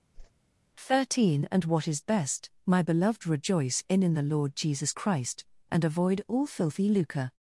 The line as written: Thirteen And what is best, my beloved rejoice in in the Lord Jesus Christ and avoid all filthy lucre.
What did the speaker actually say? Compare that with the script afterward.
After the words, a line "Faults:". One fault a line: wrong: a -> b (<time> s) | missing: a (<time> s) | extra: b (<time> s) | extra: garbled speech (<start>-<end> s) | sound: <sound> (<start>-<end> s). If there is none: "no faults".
Thirteen And what is best, my beloved rejoice in in the Lord Jesus Christ and avoid all filthy lucre.
Faults:
sound: whoosh (0.1-0.3 s)